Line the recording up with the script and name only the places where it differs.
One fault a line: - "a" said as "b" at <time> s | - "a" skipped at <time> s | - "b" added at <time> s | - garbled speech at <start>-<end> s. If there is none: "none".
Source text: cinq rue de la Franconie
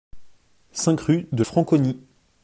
- "la" skipped at 1.4 s